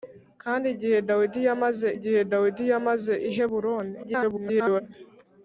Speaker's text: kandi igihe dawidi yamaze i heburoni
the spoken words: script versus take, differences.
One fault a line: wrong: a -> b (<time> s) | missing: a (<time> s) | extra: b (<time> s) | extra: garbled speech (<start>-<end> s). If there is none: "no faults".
extra: igihe dawidi yamaze (2.0 s)
extra: garbled speech (4.0-4.8 s)